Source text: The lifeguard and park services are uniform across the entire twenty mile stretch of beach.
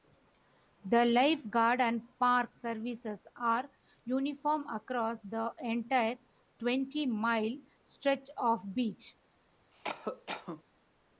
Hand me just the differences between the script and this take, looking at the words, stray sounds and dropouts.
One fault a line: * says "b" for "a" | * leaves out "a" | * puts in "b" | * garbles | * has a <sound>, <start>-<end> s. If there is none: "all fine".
* has a cough, 9.7-10.6 s